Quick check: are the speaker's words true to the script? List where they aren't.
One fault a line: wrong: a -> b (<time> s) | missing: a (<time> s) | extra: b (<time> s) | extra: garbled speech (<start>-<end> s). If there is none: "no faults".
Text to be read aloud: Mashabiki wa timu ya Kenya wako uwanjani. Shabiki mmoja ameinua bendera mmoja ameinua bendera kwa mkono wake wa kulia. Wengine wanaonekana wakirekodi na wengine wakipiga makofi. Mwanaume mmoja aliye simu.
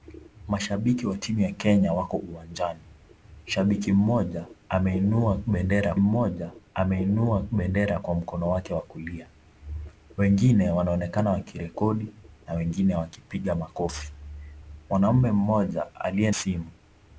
no faults